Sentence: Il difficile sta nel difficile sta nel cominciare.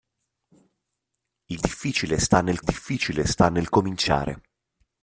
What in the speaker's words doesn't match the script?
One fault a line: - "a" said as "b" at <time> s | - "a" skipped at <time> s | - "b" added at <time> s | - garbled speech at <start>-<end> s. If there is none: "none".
none